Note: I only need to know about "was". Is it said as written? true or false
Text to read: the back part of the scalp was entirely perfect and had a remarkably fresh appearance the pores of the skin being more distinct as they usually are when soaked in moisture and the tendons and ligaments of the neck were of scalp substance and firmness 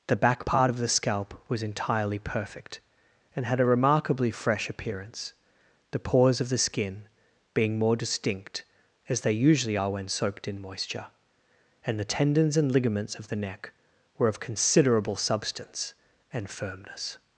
true